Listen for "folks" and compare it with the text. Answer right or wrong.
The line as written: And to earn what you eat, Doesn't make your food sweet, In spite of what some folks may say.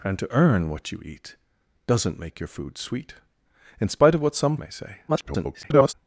wrong